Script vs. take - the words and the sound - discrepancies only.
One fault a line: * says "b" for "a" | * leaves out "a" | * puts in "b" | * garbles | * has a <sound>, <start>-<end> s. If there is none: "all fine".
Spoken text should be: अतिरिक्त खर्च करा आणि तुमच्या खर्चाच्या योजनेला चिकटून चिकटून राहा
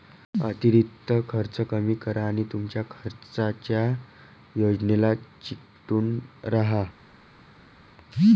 * puts in "कमी"
* leaves out "चिकटून"